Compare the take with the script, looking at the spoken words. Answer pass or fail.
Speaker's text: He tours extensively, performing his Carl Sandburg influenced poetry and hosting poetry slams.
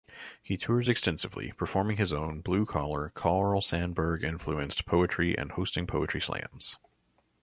fail